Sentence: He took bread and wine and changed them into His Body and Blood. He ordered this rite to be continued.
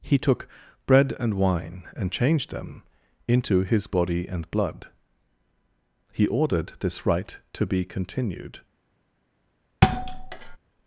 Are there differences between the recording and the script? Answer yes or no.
no